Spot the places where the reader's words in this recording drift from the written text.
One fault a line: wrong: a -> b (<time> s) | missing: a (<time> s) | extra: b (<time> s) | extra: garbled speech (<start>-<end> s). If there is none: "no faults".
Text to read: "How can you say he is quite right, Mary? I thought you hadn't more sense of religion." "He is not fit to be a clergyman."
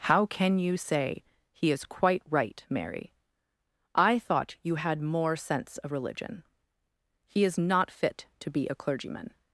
wrong: hadn't -> had (4.8 s)